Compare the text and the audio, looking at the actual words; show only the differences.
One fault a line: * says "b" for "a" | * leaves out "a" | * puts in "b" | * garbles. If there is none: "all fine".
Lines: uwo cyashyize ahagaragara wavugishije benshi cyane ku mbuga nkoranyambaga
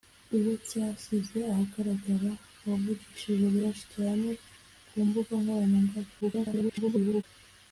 * garbles